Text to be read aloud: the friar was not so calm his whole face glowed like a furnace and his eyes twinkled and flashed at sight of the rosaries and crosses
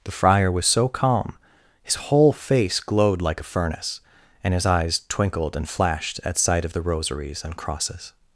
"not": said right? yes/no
no